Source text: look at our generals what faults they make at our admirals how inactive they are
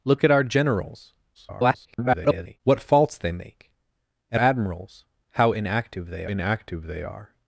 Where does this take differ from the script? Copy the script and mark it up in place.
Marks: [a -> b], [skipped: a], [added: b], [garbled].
look at our generals [garbled] what faults they make at [skipped: our] admirals how inactive they [added: inactive they] are